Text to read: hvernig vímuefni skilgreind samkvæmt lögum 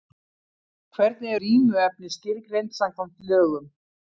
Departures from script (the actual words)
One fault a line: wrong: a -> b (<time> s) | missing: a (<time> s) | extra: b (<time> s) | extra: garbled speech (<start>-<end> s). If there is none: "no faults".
no faults